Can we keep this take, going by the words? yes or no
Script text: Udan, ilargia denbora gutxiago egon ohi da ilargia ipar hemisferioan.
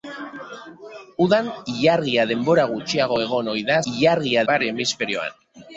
yes